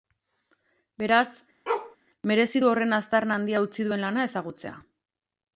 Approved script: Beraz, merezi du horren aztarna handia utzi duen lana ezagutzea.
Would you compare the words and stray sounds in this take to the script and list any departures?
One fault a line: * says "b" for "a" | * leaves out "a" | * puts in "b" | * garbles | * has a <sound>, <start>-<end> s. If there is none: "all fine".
* has a bark, 1.7-2.0 s